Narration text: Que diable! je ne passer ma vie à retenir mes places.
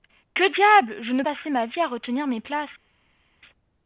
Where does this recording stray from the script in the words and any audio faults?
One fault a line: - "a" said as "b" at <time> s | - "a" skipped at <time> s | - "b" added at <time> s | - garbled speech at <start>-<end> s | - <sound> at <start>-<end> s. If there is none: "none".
none